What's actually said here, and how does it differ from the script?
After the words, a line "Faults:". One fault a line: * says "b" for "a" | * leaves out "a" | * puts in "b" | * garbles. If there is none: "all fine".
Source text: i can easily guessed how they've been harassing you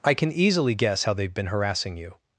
i can easily guess how they've been harassing you
Faults:
* says "guess" for "guessed"